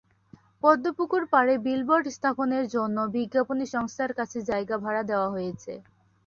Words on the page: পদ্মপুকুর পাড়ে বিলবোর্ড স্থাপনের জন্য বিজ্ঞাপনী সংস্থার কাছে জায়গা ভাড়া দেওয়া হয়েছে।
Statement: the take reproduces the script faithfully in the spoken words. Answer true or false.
true